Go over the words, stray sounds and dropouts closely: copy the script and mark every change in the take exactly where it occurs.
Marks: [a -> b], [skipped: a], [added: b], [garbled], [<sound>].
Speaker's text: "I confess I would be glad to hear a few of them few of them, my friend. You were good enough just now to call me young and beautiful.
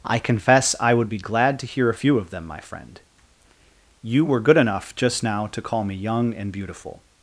"I confess I would be glad to hear a few of them [skipped: few of them,] my friend. You were good enough just now to call me young and beautiful.